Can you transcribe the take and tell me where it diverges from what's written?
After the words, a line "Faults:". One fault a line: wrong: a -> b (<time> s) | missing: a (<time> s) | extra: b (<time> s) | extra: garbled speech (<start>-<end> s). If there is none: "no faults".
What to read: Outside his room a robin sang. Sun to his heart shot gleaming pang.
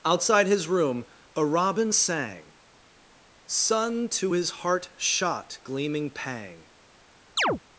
Outside his room a robin sang. Sun to his heart shot gleaming pang.
Faults:
no faults